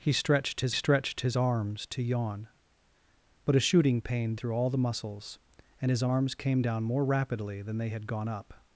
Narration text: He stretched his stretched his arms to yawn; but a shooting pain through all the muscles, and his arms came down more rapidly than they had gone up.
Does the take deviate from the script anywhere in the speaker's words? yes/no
no